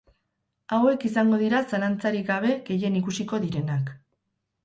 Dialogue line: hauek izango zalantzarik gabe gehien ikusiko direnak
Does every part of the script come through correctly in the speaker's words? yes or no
no